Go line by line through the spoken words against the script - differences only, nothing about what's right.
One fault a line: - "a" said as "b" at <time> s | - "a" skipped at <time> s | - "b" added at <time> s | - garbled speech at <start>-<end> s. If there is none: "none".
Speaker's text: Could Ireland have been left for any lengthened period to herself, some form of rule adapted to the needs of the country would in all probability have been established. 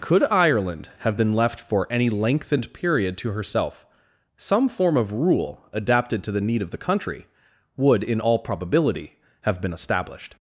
- "needs" said as "need" at 6.4 s